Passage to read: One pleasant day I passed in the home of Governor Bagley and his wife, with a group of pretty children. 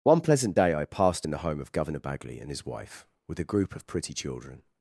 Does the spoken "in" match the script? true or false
true